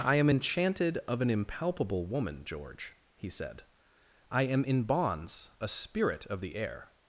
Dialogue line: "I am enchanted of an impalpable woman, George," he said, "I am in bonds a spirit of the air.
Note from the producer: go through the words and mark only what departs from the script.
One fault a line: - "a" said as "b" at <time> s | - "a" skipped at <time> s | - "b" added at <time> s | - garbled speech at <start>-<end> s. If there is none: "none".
none